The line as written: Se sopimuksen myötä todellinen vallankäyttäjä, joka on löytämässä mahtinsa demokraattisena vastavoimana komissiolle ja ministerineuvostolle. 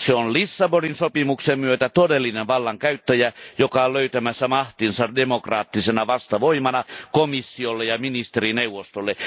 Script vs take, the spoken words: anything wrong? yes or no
yes